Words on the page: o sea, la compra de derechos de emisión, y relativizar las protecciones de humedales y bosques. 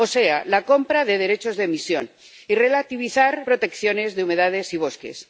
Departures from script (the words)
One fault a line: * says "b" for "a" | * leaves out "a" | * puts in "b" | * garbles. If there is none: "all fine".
* leaves out "las"